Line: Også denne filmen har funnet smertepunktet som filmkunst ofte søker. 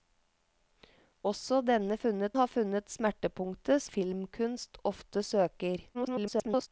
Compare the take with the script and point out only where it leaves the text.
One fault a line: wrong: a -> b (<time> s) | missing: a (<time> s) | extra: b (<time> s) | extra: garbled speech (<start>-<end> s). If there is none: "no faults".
wrong: filmen -> funnet (2.0 s)
missing: som (3.8 s)
extra: garbled speech (5.9-6.7 s)